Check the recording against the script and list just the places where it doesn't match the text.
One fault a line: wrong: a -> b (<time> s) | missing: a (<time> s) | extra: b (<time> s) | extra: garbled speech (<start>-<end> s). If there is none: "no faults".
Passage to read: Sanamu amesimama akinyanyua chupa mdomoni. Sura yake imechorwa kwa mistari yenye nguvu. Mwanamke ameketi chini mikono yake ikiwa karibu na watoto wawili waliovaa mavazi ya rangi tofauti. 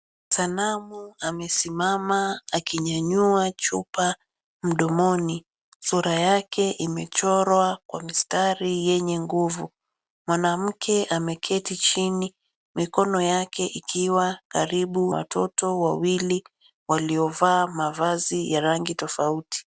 missing: na (15.2 s)